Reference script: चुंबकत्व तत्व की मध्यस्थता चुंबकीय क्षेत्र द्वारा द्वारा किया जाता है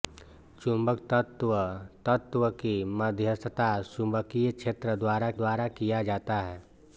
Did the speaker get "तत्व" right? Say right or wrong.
right